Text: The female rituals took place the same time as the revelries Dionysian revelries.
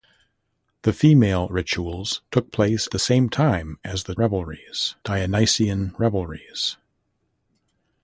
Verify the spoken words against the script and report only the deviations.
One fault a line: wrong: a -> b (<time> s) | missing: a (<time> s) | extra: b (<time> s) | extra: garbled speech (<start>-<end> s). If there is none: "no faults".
no faults